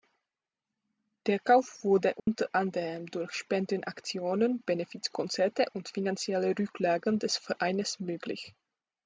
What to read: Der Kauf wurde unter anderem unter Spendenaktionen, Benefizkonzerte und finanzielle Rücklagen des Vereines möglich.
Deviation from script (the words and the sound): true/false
true